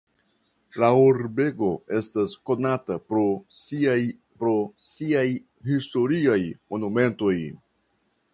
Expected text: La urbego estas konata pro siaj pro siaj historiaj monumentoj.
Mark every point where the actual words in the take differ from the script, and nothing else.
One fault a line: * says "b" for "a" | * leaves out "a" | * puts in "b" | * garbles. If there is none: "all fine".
all fine